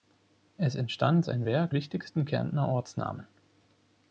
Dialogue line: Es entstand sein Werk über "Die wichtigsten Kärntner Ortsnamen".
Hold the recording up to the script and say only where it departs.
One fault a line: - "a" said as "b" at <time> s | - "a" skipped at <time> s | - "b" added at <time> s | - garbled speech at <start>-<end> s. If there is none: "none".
- "über Die" skipped at 1.7 s